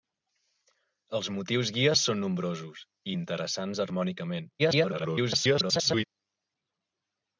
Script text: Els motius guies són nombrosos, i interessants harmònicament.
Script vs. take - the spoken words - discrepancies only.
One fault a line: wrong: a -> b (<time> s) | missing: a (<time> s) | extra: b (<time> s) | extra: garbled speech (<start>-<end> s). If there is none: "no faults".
extra: garbled speech (4.6-6.1 s)